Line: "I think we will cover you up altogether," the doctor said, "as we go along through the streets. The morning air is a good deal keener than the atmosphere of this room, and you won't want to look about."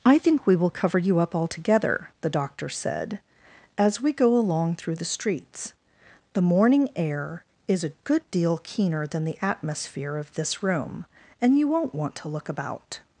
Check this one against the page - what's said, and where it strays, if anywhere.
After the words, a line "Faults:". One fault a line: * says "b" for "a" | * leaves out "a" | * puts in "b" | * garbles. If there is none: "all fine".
"I think we will cover you up altogether," the doctor said, "as we go along through the streets. The morning air is a good deal keener than the atmosphere of this room, and you won't want to look about."
Faults:
all fine